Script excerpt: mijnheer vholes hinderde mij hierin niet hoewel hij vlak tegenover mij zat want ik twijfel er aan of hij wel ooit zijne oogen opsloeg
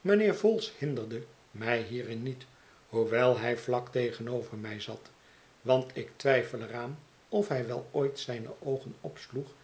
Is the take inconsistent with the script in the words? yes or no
no